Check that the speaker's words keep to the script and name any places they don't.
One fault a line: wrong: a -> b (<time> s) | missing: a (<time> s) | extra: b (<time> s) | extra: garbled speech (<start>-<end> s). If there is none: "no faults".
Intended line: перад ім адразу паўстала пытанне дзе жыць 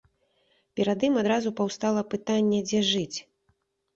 no faults